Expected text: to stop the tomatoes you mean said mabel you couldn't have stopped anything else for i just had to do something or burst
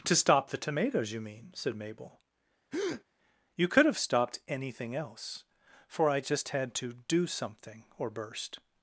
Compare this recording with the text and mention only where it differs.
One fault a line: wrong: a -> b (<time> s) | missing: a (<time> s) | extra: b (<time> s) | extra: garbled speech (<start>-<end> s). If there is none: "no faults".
wrong: couldn't -> could (3.7 s)